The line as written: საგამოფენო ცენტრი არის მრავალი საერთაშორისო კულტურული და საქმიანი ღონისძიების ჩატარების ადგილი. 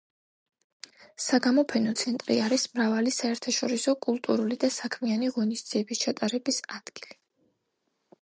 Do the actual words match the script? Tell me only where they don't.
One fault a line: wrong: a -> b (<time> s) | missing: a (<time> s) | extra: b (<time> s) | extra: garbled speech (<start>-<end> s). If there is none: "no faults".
no faults